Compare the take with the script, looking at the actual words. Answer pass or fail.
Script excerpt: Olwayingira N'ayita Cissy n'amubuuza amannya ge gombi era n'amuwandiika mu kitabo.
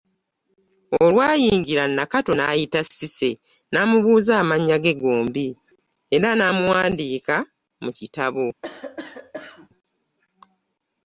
fail